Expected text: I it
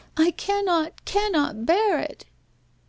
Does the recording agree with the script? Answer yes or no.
no